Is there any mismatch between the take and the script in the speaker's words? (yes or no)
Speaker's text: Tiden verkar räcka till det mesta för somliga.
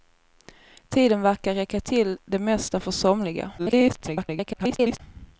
yes